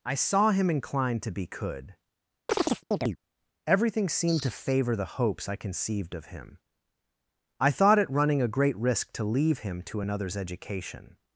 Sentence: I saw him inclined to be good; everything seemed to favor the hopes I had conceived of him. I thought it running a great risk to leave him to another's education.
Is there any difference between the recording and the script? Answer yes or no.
yes